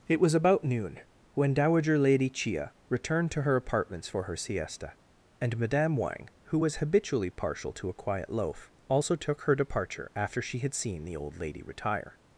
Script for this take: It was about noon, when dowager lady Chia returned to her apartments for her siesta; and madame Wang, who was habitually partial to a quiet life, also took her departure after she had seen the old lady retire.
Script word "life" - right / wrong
wrong